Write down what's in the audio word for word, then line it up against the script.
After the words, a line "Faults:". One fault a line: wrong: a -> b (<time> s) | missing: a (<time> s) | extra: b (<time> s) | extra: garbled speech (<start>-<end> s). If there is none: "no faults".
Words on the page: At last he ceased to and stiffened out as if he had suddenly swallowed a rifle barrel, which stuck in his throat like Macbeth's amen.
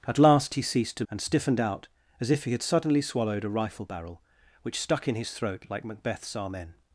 At last he ceased to and stiffened out as if he had suddenly swallowed a rifle barrel, which stuck in his throat like Macbeth's amen.
Faults:
no faults